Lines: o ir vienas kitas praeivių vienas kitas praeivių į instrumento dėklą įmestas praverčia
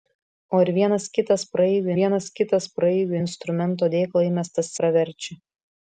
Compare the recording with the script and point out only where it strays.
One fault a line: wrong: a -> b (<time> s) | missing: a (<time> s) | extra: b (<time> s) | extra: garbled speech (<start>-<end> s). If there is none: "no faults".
no faults